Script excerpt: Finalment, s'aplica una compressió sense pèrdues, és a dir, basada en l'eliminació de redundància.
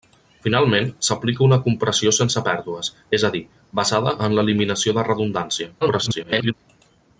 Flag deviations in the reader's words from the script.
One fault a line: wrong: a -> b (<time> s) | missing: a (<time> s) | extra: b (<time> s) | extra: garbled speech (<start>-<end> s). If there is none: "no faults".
extra: garbled speech (5.8-6.5 s)